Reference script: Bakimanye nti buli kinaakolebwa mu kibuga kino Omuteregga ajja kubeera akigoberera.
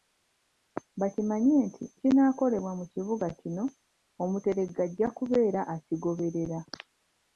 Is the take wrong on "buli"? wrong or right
wrong